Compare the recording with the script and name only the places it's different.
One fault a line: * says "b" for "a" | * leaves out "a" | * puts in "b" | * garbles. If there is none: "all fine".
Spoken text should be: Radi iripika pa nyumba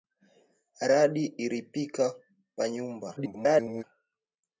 * garbles